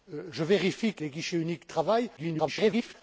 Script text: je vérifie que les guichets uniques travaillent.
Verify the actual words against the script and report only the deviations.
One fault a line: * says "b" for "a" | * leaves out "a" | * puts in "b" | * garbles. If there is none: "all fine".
* garbles